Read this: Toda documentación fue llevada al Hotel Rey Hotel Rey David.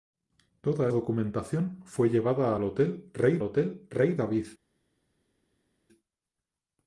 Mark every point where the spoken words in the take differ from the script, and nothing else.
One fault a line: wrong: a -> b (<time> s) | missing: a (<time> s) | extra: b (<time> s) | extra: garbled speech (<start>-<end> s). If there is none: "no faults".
no faults